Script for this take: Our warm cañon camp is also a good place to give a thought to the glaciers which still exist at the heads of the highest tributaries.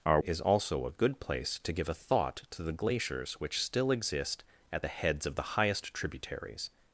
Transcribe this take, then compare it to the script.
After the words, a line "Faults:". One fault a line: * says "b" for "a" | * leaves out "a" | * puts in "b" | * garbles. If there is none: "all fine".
Our is also a good place to give a thought to the glaciers which still exist at the heads of the highest tributaries.
Faults:
* leaves out "warm cañon camp"